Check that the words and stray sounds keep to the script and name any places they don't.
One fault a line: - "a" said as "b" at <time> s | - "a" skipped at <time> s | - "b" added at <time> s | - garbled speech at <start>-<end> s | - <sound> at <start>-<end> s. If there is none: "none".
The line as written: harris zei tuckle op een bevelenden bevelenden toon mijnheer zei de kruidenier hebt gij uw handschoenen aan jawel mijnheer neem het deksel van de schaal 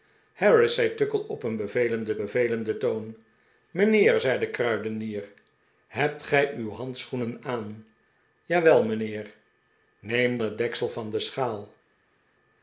none